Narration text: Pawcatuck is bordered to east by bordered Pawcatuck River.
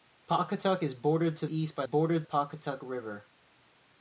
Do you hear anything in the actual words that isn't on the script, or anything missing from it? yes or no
no